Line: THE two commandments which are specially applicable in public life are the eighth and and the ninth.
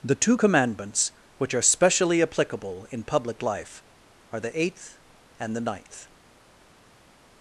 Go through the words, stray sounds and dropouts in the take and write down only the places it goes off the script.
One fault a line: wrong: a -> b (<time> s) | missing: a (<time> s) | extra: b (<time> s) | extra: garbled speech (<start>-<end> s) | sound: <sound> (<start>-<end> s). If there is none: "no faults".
missing: and (5.6 s)